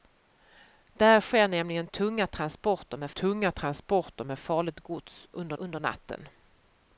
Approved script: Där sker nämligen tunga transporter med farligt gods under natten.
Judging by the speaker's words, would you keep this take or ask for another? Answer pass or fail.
fail